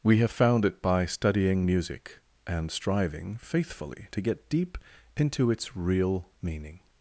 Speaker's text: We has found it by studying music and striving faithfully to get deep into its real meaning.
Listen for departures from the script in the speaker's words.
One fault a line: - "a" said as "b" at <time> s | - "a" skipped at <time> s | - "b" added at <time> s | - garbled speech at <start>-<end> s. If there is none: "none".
- "has" said as "have" at 0.2 s